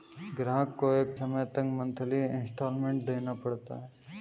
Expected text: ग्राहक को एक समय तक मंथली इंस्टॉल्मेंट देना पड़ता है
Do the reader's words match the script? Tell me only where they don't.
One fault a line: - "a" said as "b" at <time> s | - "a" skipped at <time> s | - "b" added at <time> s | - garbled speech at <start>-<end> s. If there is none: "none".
none